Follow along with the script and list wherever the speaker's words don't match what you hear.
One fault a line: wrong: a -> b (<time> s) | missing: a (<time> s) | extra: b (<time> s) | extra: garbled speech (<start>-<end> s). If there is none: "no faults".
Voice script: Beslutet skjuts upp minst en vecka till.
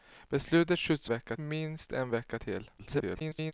wrong: upp -> vecka (1.1 s)
extra: garbled speech (2.8-3.5 s)